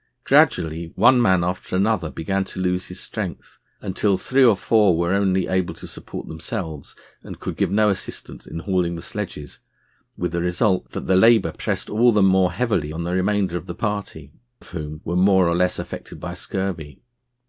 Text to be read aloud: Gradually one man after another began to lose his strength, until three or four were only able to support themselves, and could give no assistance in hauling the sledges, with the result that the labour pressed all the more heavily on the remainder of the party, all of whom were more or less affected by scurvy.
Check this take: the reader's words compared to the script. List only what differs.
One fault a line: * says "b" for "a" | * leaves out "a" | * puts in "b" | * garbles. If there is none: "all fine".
* leaves out "all"